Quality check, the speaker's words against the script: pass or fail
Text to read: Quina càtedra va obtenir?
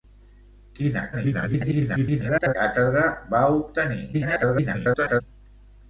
fail